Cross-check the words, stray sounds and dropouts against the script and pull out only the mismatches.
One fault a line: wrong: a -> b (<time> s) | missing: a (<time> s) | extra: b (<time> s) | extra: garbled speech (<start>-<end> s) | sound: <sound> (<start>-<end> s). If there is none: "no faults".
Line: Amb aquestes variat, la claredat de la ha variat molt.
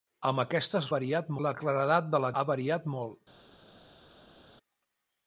no faults